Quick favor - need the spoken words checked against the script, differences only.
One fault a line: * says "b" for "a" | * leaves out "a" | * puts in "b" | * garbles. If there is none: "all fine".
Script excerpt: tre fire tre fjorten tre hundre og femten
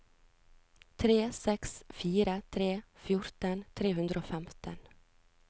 * puts in "seks"